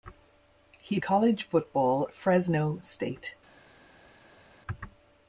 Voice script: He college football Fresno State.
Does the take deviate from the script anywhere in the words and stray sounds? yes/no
no